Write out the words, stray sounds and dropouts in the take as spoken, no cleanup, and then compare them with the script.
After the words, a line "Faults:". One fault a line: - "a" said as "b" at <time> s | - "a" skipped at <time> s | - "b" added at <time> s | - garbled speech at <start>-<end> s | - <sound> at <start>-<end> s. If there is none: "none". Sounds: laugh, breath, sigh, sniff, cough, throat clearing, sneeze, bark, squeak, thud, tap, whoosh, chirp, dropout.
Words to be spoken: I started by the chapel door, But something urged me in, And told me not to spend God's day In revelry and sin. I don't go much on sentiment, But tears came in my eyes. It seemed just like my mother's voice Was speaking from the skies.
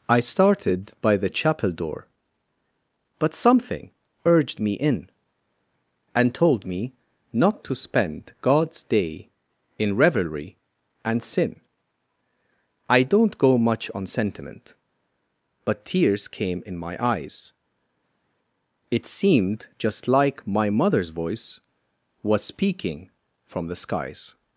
I started by the chapel door, But something urged me in, And told me not to spend God's day In revelry and sin. I don't go much on sentiment, But tears came in my eyes. It seemed just like my mother's voice Was speaking from the skies.
Faults:
none